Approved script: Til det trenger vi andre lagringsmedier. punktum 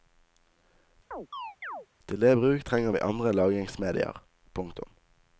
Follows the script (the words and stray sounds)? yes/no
no